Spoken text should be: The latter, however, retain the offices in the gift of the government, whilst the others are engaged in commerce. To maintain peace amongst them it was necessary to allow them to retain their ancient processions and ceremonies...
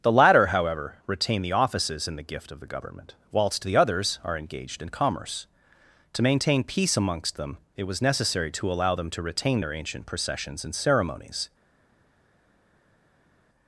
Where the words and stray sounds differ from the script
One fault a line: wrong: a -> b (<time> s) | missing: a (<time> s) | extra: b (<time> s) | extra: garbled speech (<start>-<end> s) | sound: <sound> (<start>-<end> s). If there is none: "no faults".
no faults